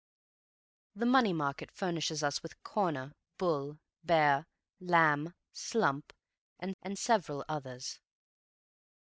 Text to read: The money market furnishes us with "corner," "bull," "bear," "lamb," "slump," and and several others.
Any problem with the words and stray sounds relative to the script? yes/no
no